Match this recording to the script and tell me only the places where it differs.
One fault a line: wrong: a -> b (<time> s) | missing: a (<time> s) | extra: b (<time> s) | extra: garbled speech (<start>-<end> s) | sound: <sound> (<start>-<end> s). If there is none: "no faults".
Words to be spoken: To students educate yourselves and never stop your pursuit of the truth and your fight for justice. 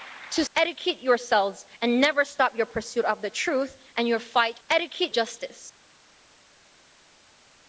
missing: students (0.5 s)
wrong: for -> educate (4.7 s)